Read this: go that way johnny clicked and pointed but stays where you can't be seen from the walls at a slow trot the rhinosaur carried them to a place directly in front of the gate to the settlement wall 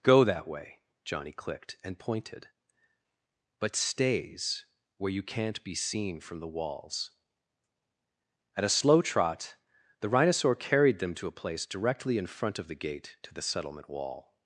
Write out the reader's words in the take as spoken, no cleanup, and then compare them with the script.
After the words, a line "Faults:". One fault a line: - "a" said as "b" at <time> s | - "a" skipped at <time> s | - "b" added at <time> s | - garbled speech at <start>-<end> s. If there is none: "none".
go that way johnny clicked and pointed but stays where you can't be seen from the walls at a slow trot the rhinosaur carried them to a place directly in front of the gate to the settlement wall
Faults:
none